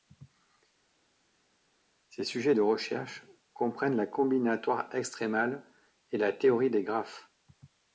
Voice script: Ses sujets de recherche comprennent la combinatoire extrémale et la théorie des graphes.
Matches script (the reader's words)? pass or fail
pass